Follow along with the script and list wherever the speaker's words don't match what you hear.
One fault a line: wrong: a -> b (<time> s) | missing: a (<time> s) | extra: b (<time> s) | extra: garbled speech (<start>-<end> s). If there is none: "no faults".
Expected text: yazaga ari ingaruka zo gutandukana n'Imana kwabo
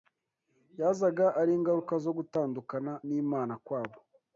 no faults